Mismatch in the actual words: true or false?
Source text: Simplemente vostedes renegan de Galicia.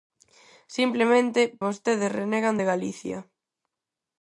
false